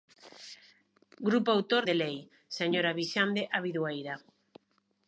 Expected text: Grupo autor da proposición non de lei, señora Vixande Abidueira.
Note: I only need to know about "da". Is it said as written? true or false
false